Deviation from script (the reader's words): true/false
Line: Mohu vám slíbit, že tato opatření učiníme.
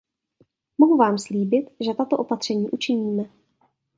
false